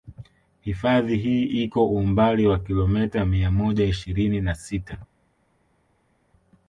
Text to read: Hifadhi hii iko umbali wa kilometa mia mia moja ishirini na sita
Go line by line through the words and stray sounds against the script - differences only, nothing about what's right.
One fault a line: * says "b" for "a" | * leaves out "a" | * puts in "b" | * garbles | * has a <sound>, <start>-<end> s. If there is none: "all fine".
* leaves out "mia"